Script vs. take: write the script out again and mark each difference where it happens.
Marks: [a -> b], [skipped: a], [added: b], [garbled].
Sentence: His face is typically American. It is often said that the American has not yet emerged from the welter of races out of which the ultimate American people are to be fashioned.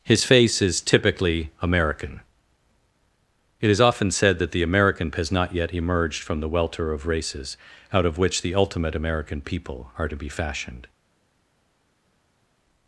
His face is typically American. It is often said that the American has not yet emerged from the welter of races out of which the ultimate American people are to be fashioned.